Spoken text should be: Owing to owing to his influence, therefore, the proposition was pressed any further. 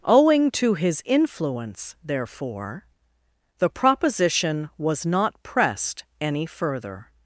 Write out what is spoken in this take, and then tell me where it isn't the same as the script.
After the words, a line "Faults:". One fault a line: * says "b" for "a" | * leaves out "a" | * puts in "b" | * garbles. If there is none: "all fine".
Owing to his influence, therefore, the proposition was not pressed any further.
Faults:
* leaves out "owing to"
* puts in "not"